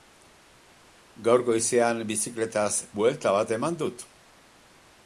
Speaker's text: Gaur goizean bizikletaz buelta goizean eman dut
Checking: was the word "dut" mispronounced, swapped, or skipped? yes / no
no